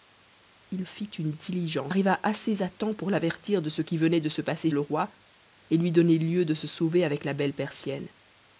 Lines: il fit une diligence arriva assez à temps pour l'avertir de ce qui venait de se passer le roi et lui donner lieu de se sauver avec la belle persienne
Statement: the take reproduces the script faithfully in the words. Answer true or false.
true